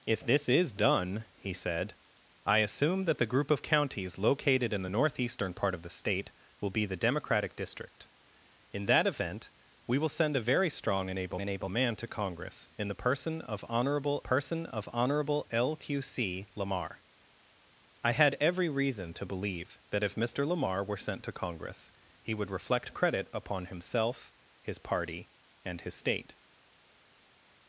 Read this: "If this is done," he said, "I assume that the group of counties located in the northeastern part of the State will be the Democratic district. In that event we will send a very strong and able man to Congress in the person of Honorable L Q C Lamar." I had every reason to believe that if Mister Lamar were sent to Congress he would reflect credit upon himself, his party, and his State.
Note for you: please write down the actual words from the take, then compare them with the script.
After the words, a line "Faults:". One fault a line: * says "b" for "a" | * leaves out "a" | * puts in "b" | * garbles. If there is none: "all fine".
"If this is done," he said, "I assume that the group of counties located in the northeastern part of the State will be the Democratic district. In that event we will send a very strong and able and able man to Congress in the person of Honorable person of Honorable L Q C Lamar." I had every reason to believe that if Mister Lamar were sent to Congress he would reflect credit upon himself, his party, and his State.
Faults:
* puts in "and able"
* puts in "person of Honorable"